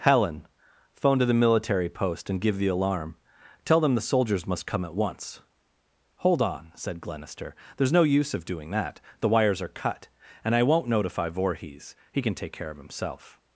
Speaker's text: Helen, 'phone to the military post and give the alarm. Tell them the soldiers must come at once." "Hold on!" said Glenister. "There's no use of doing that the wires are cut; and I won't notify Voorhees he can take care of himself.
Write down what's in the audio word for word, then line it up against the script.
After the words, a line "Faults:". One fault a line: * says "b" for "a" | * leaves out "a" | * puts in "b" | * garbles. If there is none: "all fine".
Helen, 'phone to the military post and give the alarm. Tell them the soldiers must come at once." "Hold on!" said Glenister. "There's no use of doing that the wires are cut; and I won't notify Voorhees he can take care of himself.
Faults:
all fine